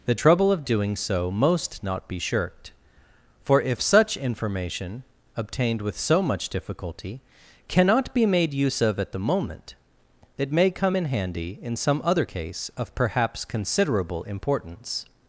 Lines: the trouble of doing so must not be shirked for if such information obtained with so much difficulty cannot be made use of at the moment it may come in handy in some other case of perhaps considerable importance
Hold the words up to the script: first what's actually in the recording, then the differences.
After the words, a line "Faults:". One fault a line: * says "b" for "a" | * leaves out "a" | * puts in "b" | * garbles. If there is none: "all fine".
the trouble of doing so most not be shirked for if such information obtained with so much difficulty cannot be made use of at the moment it may come in handy in some other case of perhaps considerable importance
Faults:
* says "most" for "must"